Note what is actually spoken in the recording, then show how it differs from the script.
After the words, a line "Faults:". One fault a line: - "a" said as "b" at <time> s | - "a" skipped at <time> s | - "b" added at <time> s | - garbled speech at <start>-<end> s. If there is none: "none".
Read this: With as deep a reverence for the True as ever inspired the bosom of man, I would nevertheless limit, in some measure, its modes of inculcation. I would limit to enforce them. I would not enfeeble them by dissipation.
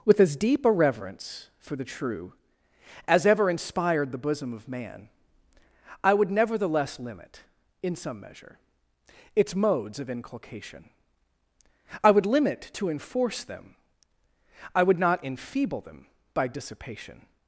With as deep a reverence for the True as ever inspired the bosom of man, I would nevertheless limit, in some measure, its modes of inculcation. I would limit to enforce them. I would not enfeeble them by dissipation.
Faults:
none